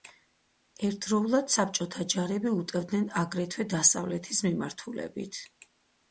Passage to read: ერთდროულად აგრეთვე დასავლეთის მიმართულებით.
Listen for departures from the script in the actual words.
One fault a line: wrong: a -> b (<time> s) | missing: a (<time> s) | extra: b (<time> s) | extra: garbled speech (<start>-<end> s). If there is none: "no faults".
extra: საბჭოთა ჯარები უტევდნენ (1.5 s)